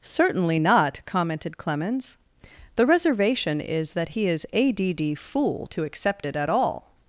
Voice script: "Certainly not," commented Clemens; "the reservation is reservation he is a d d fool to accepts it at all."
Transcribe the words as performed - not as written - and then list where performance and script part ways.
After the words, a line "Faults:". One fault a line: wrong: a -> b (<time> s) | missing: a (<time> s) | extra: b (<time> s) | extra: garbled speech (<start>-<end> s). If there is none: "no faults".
"Certainly not," commented Clemens; "the reservation is that he is a d d fool to accept it at all."
Faults:
wrong: reservation -> that (3.9 s)
wrong: accepts -> accept (5.8 s)